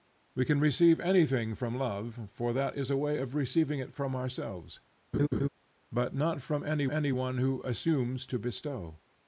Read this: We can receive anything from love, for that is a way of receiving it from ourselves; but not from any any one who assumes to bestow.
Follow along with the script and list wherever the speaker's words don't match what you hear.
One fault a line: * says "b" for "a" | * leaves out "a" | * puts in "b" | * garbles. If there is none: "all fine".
all fine